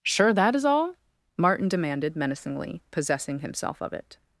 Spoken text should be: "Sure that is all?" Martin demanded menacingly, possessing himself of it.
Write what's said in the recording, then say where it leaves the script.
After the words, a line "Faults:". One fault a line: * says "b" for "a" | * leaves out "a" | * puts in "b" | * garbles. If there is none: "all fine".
"Sure that is all?" Martin demanded menacingly, possessing himself of it.
Faults:
all fine